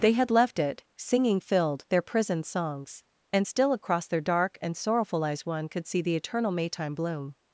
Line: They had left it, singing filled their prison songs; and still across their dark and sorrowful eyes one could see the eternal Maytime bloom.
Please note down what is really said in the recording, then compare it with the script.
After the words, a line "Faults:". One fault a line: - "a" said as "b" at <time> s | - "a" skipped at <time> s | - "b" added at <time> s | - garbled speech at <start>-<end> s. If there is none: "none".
They had left it, singing filled their prison songs; and still across their dark and sorrowful eyes one could see the eternal Maytime bloom.
Faults:
none